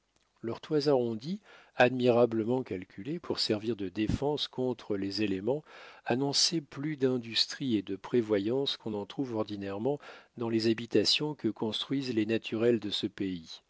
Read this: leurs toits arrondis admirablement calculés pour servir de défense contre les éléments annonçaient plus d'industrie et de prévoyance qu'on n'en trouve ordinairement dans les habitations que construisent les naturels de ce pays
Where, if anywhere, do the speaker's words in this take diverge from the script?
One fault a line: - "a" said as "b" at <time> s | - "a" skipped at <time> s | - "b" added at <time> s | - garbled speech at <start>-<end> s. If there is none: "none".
none